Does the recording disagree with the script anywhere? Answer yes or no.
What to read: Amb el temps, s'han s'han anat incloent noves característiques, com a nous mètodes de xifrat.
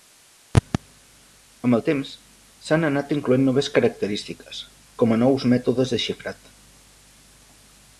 yes